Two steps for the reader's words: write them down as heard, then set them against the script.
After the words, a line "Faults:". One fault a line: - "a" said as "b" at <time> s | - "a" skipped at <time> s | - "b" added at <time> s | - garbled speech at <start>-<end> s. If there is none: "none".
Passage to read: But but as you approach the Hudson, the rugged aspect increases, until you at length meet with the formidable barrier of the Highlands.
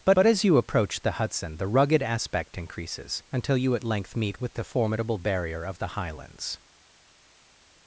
But but as you approach the Hudson, the rugged aspect increases, until you at length meet with the formidable barrier of the Highlands.
Faults:
none